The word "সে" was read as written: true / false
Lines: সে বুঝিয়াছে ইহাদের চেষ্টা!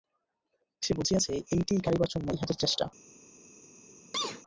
true